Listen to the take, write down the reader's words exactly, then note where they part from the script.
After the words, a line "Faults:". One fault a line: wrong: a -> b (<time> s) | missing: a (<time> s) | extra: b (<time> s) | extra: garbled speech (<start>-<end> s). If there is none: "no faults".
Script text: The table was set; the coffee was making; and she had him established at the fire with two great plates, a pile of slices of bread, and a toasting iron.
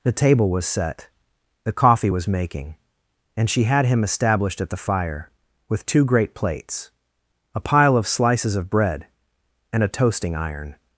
The table was set; the coffee was making; and she had him established at the fire with two great plates, a pile of slices of bread, and a toasting iron.
Faults:
no faults